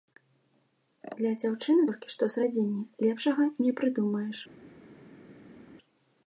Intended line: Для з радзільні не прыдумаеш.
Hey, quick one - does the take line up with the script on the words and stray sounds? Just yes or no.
no